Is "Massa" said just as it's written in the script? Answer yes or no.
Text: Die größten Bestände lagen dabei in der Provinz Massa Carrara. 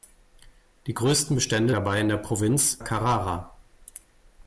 no